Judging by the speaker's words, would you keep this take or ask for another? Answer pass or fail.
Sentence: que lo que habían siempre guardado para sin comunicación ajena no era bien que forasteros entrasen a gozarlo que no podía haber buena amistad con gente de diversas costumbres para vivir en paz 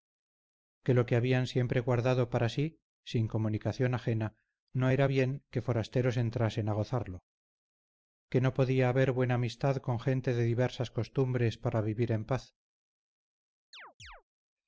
fail